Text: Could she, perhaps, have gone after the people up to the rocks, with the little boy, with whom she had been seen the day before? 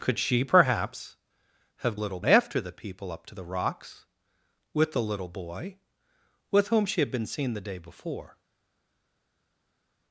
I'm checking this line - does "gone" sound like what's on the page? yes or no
no